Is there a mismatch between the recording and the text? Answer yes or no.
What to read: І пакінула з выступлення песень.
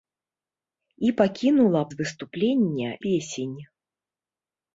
no